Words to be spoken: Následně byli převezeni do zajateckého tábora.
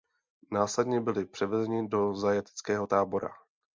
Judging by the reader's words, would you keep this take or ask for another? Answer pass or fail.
pass